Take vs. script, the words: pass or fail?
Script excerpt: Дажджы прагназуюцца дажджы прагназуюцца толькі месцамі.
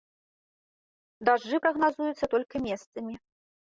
fail